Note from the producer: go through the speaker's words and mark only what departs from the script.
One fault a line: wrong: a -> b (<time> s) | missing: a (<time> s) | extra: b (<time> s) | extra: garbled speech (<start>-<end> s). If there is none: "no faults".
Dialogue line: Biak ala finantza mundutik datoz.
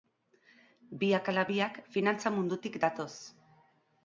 extra: biak (1.5 s)